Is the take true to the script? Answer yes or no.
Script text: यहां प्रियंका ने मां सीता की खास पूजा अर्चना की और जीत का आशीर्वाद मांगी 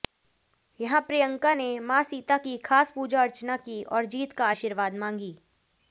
yes